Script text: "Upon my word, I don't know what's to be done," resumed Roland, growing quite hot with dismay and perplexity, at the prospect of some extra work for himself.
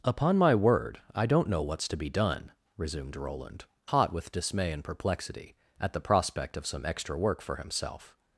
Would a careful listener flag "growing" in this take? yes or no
yes